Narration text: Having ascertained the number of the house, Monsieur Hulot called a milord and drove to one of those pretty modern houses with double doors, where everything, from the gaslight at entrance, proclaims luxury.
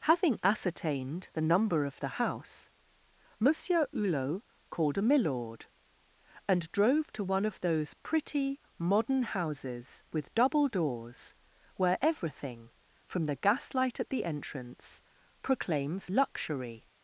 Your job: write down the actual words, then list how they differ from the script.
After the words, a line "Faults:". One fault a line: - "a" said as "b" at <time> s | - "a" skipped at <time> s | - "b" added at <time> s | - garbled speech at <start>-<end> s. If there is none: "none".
Having ascertained the number of the house, Monsieur Hulot called a milord and drove to one of those pretty modern houses with double doors, where everything, from the gaslight at the entrance, proclaims luxury.
Faults:
- "the" added at 14.1 s